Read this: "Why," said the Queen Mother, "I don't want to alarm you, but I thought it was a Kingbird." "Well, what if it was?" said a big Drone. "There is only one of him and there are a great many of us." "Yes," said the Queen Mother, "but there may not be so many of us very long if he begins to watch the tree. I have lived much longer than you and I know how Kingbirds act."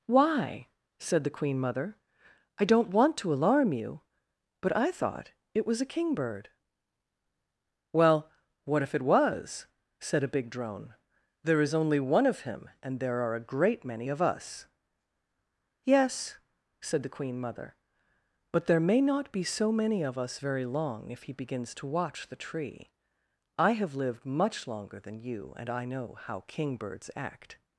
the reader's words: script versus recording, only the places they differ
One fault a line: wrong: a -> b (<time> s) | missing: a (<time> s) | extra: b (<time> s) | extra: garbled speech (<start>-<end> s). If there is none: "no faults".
no faults